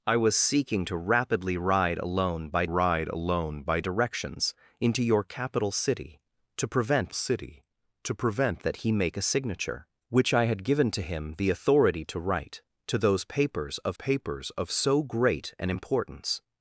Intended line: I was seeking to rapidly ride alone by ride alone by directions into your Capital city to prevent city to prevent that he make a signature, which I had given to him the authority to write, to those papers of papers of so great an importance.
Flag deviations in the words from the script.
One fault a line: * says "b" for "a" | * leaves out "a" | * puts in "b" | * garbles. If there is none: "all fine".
all fine